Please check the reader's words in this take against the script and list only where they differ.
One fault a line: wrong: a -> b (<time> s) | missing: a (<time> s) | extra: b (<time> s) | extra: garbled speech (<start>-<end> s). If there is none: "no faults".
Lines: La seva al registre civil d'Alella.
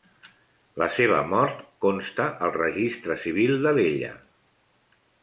extra: mort consta (1.3 s)